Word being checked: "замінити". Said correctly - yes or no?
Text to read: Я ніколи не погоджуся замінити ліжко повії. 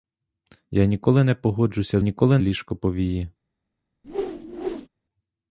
no